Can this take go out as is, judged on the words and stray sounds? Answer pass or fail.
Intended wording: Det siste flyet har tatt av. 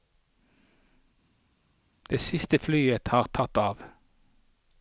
pass